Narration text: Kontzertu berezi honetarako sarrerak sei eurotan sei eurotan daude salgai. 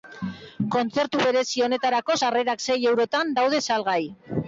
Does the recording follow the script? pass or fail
fail